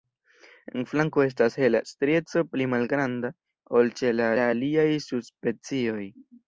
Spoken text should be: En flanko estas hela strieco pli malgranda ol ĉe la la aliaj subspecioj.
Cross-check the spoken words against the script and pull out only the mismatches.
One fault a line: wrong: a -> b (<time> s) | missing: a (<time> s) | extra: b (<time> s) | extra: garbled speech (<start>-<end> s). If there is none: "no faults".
no faults